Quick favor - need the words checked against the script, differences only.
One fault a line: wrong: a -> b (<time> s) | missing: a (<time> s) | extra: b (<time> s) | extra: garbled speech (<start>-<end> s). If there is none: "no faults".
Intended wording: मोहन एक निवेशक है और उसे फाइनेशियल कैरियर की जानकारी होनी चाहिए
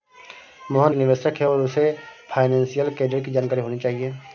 missing: एक (0.9 s)